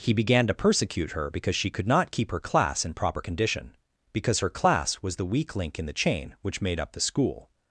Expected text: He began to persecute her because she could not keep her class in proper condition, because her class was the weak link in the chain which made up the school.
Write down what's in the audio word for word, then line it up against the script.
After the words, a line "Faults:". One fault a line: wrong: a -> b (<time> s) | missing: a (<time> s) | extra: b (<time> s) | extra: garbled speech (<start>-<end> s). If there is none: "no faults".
He began to persecute her because she could not keep her class in proper condition, because her class was the weak link in the chain which made up the school.
Faults:
no faults